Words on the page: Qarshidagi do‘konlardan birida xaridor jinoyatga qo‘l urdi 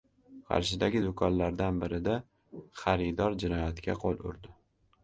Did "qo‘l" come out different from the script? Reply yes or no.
no